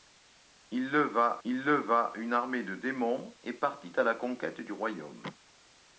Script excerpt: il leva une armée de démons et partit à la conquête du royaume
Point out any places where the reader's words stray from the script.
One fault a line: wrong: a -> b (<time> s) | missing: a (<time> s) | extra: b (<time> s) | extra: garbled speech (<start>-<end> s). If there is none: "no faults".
extra: il leva (1.4 s)